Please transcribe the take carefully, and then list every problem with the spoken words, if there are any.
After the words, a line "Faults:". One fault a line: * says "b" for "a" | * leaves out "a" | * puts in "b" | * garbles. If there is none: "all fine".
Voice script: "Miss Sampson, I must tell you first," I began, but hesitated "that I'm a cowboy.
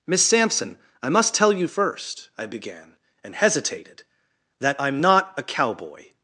"Miss Sampson, I must tell you first," I began, and hesitated "that I'm not a cowboy.
Faults:
* says "and" for "but"
* puts in "not"